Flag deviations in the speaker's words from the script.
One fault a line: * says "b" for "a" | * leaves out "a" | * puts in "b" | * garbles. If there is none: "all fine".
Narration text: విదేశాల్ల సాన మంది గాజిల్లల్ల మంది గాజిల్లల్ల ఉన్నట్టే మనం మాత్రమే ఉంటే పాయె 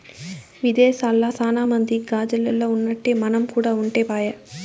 * leaves out "మంది గాజిల్లల్ల"
* says "కూడా" for "మాత్రమే"